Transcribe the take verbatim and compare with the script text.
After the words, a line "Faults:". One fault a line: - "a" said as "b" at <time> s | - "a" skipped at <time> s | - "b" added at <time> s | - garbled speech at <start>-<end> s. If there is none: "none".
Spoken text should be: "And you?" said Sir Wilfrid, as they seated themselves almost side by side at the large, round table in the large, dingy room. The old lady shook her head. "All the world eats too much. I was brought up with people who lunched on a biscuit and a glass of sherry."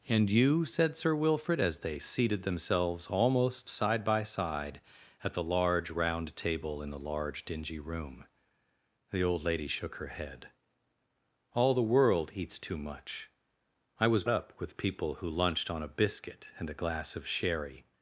"And you?" said Sir Wilfrid, as they seated themselves almost side by side at the large, round table in the large, dingy room. The old lady shook her head. "All the world eats too much. I was up with people who lunched on a biscuit and a glass of sherry."
Faults:
- "brought" skipped at 14.2 s